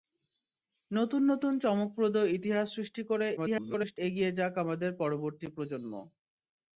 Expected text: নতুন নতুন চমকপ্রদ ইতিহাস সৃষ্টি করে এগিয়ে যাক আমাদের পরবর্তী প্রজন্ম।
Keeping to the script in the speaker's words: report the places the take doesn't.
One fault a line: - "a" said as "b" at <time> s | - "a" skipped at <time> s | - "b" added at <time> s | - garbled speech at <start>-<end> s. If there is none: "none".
- garbled speech at 3.4-4.0 s